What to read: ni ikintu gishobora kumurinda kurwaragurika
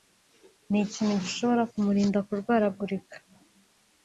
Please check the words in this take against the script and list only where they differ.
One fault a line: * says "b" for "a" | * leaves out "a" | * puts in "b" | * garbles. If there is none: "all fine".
all fine